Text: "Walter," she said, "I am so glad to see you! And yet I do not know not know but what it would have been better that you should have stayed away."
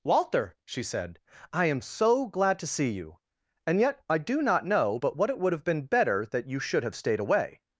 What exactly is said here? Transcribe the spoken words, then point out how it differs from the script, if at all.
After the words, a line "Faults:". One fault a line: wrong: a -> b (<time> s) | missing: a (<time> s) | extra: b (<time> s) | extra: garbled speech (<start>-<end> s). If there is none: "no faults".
"Walter," she said, "I am so glad to see you! And yet I do not know but what it would have been better that you should have stayed away."
Faults:
missing: not know (5.0 s)